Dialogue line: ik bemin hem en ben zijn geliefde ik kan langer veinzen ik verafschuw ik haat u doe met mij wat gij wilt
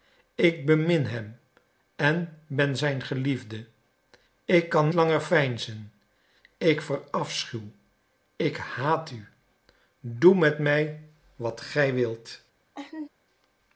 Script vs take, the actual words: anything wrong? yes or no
no